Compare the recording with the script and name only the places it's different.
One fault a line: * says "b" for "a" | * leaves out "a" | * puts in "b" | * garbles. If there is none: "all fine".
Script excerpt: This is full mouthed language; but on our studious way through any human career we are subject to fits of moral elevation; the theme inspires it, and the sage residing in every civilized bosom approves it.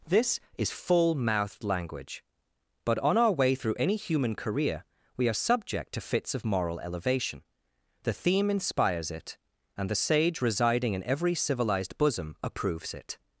* leaves out "studious"